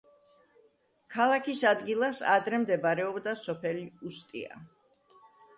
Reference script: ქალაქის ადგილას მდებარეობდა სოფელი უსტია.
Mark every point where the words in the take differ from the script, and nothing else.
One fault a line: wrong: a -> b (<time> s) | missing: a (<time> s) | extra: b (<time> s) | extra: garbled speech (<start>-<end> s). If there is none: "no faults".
extra: ადრე (2.4 s)